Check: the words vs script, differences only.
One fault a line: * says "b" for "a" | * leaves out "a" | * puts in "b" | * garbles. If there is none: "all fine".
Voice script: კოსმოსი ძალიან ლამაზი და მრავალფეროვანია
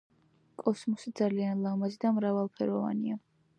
all fine